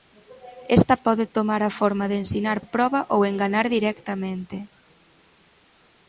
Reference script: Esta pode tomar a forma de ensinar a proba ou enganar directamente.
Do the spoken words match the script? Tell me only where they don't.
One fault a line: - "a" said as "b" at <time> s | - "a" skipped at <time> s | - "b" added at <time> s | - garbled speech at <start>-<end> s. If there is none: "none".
none